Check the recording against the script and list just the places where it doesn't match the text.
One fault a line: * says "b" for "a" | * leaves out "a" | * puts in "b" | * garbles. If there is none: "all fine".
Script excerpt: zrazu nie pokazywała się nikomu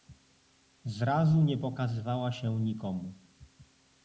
all fine